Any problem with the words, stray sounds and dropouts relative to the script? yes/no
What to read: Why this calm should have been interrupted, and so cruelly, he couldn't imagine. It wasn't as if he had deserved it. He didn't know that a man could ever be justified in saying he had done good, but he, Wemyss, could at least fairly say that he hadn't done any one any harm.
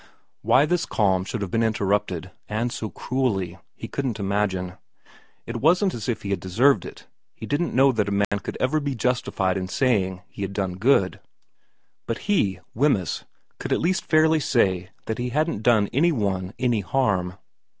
yes